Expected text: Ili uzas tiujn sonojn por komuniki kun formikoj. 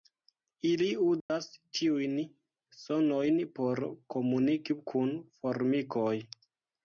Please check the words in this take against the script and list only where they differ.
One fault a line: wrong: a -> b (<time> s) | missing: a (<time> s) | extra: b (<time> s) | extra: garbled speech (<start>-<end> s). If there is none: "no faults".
no faults